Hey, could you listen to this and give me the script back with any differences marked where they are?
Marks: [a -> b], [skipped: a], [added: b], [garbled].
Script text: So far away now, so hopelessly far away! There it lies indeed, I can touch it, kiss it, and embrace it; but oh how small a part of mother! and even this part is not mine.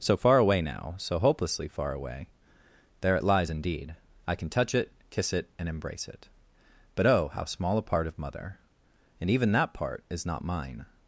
So far away now, so hopelessly far away! There it lies indeed, I can touch it, kiss it, and embrace it; but oh how small a part of mother! and even [this -> that] part is not mine.